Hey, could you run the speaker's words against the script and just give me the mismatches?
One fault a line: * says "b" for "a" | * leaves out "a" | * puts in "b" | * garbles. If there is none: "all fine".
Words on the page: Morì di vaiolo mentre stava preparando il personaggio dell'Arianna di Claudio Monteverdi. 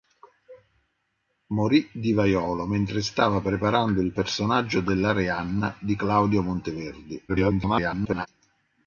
* garbles